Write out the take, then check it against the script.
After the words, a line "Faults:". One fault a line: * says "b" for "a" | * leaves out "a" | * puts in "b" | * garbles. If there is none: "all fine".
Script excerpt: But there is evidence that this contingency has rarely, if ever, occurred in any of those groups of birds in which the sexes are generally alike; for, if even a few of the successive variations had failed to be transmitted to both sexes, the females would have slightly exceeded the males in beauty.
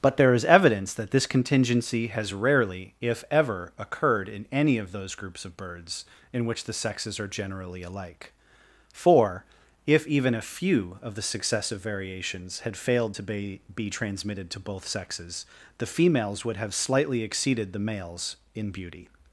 But there is evidence that this contingency has rarely, if ever, occurred in any of those groups of birds in which the sexes are generally alike; for, if even a few of the successive variations had failed to be be transmitted to both sexes, the females would have slightly exceeded the males in beauty.
Faults:
* puts in "be"